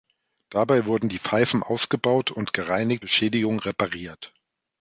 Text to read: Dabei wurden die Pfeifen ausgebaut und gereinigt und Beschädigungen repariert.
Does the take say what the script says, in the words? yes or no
no